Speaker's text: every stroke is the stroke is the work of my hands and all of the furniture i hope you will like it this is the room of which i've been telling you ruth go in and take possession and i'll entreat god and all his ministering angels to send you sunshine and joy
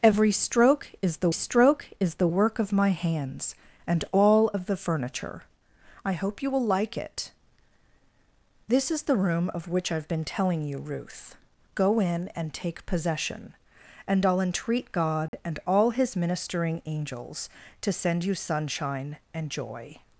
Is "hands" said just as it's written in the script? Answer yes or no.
yes